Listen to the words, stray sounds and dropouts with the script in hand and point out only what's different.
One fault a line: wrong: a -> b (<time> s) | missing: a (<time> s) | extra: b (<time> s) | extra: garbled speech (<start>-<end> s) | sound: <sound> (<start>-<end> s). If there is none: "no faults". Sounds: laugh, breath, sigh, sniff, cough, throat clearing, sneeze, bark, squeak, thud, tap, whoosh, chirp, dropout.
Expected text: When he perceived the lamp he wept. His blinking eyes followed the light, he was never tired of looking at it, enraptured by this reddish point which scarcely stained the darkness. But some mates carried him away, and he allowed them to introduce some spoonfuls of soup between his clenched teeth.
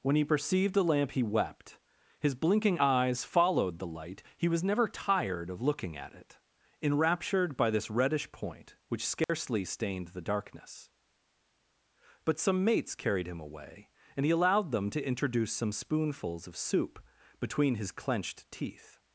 sound: dropout (9.2-9.3 s)